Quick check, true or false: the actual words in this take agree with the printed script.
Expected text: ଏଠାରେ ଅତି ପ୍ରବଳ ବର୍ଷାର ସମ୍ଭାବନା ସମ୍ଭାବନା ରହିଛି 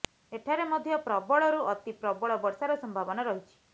false